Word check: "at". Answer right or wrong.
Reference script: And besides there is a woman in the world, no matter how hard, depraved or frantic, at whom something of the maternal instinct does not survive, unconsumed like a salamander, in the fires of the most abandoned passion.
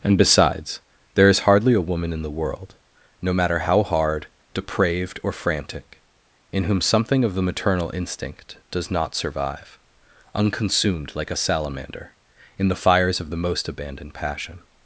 wrong